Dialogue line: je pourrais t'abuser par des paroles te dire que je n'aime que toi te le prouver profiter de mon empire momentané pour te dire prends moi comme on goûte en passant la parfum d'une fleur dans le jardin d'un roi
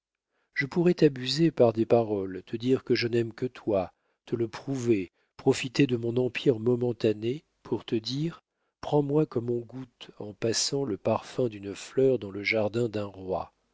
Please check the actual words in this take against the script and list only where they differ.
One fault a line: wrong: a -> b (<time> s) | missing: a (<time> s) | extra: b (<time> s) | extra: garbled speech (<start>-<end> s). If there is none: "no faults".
wrong: la -> le (10.9 s)